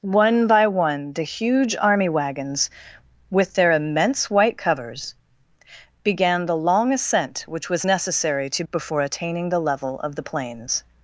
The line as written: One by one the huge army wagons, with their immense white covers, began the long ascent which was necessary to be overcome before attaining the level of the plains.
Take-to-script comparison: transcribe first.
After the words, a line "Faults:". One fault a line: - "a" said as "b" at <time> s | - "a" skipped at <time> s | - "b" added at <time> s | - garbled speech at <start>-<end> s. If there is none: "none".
One by one the huge army wagons, with their immense white covers, began the long ascent which was necessary to before attaining the level of the plains.
Faults:
- "be overcome" skipped at 8.6 s